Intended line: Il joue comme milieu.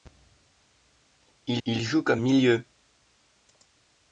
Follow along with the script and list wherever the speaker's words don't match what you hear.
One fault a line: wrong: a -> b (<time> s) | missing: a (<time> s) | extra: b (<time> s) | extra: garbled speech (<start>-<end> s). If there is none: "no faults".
extra: il (1.6 s)